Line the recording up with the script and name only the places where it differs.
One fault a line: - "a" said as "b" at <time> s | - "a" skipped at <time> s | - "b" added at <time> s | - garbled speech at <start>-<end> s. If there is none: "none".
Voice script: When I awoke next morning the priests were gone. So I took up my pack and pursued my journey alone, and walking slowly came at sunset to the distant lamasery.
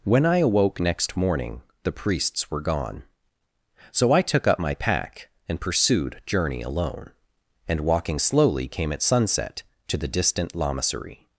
- "my" skipped at 6.2 s